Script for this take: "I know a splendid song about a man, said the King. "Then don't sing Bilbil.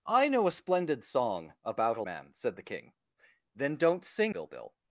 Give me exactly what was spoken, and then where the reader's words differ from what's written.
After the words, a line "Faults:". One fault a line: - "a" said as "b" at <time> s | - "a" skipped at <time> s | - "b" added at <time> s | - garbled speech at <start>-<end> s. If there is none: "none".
"I know a splendid song about a man, said the King. "Then don't sing Bilbil.
Faults:
none